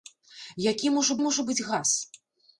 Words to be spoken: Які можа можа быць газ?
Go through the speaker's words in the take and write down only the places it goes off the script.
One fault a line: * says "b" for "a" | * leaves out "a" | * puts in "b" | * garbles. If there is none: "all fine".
all fine